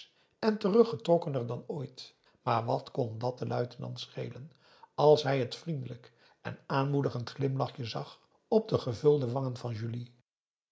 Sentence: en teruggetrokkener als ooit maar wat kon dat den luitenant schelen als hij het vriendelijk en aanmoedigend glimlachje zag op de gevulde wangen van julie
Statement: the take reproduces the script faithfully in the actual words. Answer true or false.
false